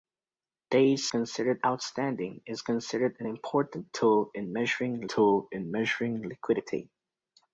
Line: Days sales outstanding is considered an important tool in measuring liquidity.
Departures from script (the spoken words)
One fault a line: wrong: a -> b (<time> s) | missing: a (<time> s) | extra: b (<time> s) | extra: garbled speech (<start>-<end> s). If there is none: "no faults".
wrong: sales -> considered (1.1 s)
extra: tool in measuring (5.1 s)